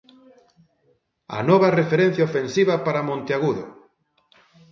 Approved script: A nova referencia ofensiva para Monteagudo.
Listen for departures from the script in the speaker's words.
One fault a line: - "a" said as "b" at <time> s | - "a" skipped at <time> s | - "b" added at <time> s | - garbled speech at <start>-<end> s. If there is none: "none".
none